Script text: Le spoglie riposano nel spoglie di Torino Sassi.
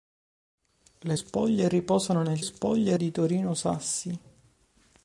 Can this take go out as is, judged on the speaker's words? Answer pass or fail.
pass